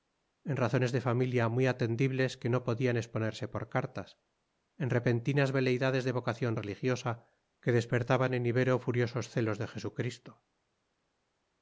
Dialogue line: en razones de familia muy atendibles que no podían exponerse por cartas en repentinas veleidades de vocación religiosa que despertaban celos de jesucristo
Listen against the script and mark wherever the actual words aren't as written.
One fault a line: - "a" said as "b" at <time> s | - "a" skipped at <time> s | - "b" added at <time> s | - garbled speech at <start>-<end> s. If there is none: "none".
- "en ibero furiosos" added at 8.3 s